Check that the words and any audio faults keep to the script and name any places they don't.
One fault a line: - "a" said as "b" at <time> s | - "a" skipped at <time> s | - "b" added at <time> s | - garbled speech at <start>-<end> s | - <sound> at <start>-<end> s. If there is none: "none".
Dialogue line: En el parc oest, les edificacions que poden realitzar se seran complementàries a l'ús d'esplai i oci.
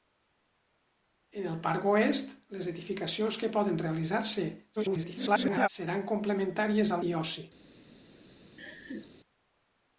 - garbled speech at 4.8-5.7 s
- "l'ús d'esplai" skipped at 7.0 s
- laugh at 8.6-9.2 s